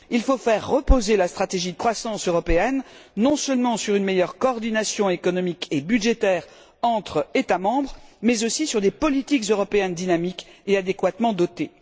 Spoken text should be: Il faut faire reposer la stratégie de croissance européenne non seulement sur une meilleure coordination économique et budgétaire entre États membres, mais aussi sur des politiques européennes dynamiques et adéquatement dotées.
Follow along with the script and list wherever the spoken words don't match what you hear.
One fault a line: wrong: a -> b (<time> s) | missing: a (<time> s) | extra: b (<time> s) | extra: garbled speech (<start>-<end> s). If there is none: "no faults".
no faults